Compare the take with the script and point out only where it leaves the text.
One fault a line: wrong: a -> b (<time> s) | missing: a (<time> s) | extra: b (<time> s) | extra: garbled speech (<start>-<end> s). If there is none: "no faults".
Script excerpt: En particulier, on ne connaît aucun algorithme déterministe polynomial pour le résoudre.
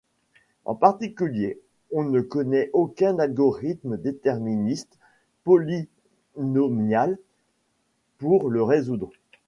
no faults